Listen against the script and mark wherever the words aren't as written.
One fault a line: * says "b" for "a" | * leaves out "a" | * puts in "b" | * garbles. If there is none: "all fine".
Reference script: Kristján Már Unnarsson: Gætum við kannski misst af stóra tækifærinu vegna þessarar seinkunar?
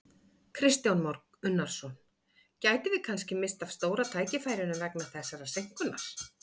all fine